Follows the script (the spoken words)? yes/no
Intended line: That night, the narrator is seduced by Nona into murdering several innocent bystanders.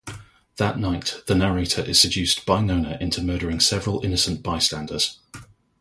yes